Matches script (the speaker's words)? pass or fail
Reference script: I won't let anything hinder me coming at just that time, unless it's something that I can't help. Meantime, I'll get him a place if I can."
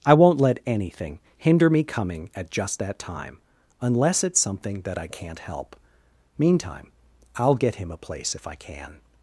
pass